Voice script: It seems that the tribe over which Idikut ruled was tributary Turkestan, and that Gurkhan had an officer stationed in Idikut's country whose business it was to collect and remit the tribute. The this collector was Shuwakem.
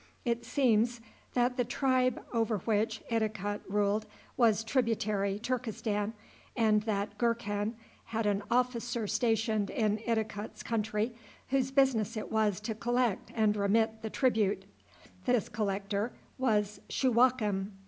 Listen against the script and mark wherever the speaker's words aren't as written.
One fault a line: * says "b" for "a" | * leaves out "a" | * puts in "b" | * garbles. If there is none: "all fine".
all fine